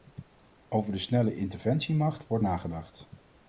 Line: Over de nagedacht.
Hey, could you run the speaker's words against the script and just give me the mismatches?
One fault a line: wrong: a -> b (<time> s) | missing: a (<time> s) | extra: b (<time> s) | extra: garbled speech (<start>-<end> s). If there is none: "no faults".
extra: snelle interventiemacht wordt (1.0 s)